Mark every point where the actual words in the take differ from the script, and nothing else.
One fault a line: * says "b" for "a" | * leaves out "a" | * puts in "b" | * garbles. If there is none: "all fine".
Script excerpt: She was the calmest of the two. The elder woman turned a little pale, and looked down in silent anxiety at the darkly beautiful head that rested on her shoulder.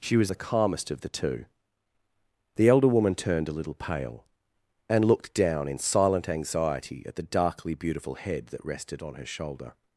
all fine